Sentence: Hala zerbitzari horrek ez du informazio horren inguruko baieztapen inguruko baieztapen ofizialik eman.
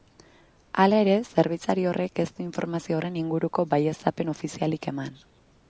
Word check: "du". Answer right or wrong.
right